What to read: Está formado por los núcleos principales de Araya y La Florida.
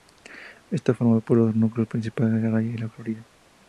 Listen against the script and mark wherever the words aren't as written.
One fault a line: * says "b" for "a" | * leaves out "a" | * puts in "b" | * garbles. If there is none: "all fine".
all fine